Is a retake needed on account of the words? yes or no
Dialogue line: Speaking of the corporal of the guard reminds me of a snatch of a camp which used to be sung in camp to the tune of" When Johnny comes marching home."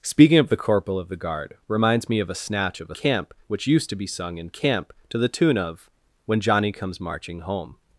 no